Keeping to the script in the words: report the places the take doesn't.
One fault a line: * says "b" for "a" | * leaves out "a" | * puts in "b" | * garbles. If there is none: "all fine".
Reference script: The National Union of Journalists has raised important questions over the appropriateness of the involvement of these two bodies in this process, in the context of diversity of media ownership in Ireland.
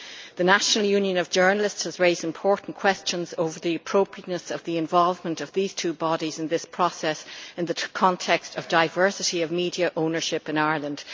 all fine